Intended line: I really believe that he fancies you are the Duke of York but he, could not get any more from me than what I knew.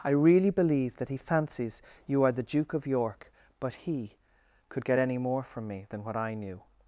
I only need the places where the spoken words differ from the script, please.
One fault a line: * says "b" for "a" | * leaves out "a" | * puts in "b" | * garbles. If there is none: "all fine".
* leaves out "not"